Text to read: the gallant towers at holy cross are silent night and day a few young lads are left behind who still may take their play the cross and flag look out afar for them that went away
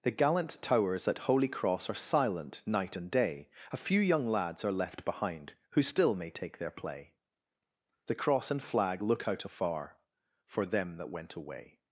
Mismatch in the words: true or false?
false